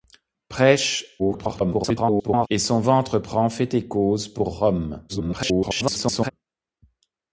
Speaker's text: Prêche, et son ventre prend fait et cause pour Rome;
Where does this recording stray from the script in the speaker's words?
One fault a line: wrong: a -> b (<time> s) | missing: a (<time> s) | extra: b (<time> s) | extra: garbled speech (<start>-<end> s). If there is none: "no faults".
extra: garbled speech (1.2-2.5 s)
extra: garbled speech (5.1-6.3 s)